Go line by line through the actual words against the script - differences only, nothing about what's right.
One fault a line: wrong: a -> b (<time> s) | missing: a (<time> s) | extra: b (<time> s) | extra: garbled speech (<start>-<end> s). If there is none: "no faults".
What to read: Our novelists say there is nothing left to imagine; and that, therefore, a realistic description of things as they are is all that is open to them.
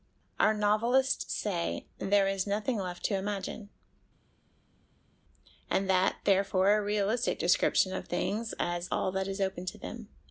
missing: they are is (8.9 s)